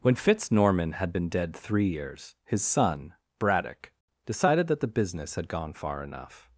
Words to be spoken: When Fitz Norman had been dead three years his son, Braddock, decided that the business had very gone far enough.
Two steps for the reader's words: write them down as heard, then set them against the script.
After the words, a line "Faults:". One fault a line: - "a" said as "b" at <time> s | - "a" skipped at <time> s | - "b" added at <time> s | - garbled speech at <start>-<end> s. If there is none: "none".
When Fitz Norman had been dead three years his son, Braddock, decided that the business had gone far enough.
Faults:
- "very" skipped at 5.5 s